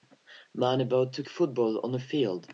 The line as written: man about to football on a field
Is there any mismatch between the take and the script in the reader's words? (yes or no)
no